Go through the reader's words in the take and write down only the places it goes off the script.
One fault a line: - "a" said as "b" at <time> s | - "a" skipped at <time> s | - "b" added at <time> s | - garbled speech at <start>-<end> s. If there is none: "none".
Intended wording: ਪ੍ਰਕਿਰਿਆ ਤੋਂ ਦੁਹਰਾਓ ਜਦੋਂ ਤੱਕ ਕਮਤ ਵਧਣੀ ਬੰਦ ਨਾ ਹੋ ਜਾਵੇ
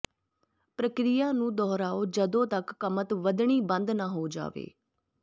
- "ਤੋਂ" said as "ਨੂੰ" at 1.3 s